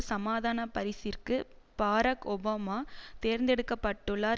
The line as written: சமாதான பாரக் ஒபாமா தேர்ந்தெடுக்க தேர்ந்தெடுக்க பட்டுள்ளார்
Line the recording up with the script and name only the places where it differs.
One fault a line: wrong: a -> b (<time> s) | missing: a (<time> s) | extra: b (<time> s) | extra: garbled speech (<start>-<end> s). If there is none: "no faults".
extra: பரிசிற்கு (0.7 s)
missing: தேர்ந்தெடுக்க (3.7 s)